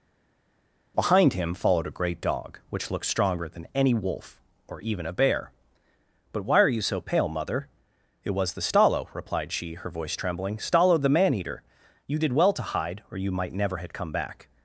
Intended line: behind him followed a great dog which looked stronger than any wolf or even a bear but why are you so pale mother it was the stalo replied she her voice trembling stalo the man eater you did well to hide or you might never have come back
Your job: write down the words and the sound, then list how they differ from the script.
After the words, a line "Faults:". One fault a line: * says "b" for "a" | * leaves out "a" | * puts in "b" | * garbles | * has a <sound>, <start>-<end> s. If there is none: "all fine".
behind him followed a great dog which looked stronger than any wolf or even a bear but why are you so pale mother it was the stalo replied she her voice trembling stalo the man eater you did well to hide or you might never have come back
Faults:
all fine